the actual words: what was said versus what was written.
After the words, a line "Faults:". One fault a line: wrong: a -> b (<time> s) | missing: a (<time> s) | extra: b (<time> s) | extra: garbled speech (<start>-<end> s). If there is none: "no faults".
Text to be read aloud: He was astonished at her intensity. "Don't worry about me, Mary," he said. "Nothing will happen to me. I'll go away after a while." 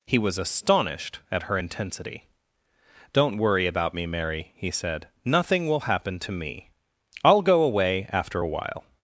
He was astonished at her intensity. "Don't worry about me, Mary," he said. "Nothing will happen to me. I'll go away after a while."
Faults:
no faults